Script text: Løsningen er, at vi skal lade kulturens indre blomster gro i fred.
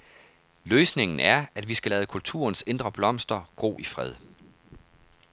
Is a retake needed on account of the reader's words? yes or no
no